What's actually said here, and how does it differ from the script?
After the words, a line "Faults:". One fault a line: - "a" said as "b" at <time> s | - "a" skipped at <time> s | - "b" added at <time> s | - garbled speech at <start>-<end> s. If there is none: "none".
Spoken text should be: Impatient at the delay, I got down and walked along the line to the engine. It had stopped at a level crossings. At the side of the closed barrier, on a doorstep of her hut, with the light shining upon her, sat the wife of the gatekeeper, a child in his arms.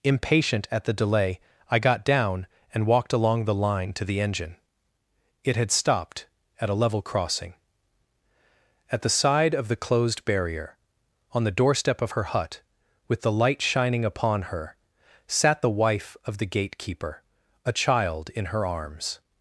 Impatient at the delay, I got down and walked along the line to the engine. It had stopped at a level crossing. At the side of the closed barrier, on the doorstep of her hut, with the light shining upon her, sat the wife of the gatekeeper, a child in her arms.
Faults:
- "crossings" said as "crossing" at 7.0 s
- "a" said as "the" at 11.4 s
- "his" said as "her" at 18.5 s